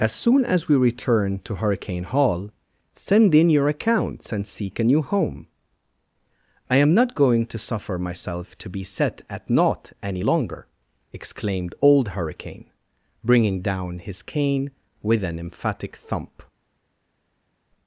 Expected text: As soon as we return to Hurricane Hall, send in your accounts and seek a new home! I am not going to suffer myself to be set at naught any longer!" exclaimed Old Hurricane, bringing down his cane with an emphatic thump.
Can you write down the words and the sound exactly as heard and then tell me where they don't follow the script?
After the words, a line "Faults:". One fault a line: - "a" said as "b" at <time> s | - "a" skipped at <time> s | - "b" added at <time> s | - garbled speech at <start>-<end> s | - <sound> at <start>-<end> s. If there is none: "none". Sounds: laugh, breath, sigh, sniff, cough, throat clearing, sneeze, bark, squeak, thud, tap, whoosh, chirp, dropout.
As soon as we return to Hurricane Hall, send in your accounts and seek a new home! I am not going to suffer myself to be set at naught any longer!" exclaimed Old Hurricane, bringing down his cane with an emphatic thump.
Faults:
none